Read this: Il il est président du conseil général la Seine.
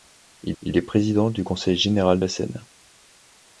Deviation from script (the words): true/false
false